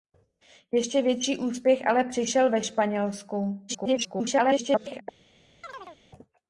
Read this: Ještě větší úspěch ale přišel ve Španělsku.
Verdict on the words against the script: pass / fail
fail